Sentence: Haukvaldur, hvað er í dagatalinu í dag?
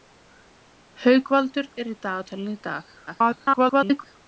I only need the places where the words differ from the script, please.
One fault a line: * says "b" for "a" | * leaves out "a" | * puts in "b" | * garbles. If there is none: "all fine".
* leaves out "hvað"
* garbles